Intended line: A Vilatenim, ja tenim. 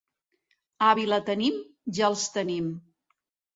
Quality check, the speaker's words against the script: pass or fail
fail